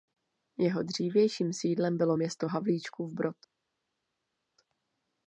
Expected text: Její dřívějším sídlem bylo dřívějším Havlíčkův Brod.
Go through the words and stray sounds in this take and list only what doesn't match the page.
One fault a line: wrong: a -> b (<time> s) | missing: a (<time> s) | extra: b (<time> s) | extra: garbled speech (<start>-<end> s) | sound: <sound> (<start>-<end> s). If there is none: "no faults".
wrong: Její -> Jeho (0.6 s)
wrong: dřívějším -> město (2.2 s)